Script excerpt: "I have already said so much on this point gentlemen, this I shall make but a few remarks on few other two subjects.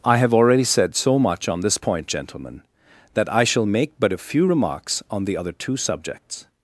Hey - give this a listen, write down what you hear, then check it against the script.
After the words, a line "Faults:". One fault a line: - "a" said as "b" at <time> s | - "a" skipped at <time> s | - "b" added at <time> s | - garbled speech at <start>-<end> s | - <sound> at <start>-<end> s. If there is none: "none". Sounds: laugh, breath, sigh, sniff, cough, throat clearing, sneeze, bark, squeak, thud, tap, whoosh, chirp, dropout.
"I have already said so much on this point gentlemen, that I shall make but a few remarks on the other two subjects.
Faults:
- "this" said as "that" at 3.1 s
- "few" said as "the" at 5.2 s